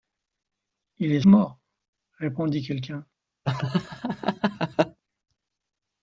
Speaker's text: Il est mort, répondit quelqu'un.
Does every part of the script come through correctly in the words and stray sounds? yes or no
no